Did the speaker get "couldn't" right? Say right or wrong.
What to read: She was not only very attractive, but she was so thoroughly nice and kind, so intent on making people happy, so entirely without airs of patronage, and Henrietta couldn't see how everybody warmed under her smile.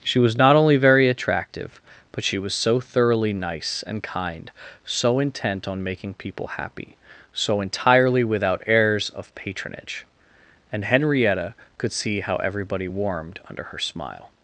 wrong